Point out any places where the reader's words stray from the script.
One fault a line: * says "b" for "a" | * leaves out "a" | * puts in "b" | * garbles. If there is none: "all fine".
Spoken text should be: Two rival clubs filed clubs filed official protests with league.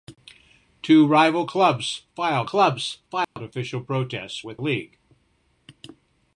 all fine